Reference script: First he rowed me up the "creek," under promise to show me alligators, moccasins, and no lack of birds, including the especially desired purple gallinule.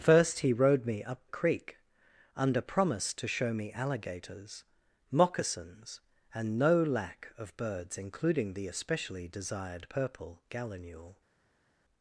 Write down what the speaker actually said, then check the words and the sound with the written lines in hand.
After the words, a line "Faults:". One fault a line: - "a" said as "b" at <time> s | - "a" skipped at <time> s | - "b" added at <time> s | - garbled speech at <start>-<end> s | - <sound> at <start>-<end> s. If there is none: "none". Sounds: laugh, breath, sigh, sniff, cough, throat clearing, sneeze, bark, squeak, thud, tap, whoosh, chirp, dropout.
First he rowed me up "creek," under promise to show me alligators, moccasins, and no lack of birds, including the especially desired purple gallinule.
Faults:
- "the" skipped at 1.3 s